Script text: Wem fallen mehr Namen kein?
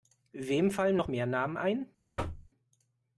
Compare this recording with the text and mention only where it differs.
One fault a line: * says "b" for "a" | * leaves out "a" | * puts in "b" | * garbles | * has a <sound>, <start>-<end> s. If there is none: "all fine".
* puts in "noch"
* says "ein" for "kein"
* has a thud, 2.2-2.5 s